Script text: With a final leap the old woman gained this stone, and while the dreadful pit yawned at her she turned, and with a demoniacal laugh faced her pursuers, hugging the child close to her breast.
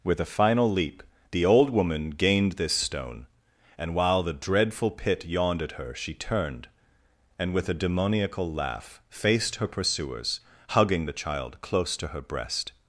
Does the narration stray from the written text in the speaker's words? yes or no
no